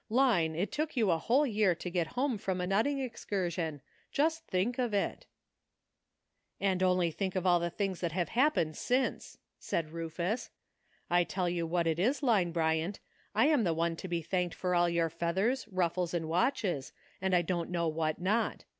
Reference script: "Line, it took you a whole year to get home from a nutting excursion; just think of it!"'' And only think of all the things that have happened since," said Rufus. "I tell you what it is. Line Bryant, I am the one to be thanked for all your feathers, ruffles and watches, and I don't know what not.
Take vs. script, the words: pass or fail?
pass